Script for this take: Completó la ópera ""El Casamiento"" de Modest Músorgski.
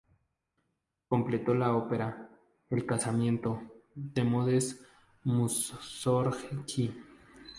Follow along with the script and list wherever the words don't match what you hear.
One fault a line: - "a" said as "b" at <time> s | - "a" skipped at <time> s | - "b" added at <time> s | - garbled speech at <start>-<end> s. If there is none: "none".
none